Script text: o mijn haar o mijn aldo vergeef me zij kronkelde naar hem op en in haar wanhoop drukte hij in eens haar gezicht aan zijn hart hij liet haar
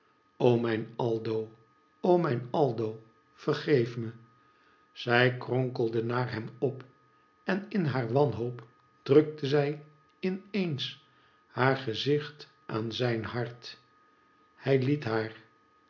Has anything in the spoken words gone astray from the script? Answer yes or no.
yes